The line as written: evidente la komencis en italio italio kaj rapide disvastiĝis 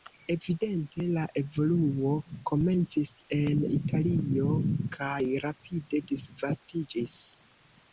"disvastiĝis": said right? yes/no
yes